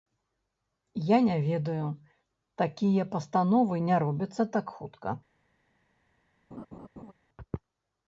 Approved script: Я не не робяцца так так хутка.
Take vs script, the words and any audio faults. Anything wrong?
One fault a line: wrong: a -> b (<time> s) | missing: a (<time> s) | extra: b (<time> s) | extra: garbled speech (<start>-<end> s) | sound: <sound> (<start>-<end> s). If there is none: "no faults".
extra: ведаю такія пастановы (1.5 s)
missing: так (4.7 s)
sound: laugh (6.5-7.1 s)